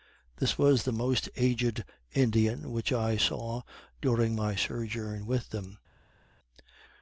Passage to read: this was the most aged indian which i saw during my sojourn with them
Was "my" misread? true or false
false